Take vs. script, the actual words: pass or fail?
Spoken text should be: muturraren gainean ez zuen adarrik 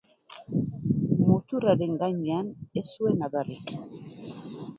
pass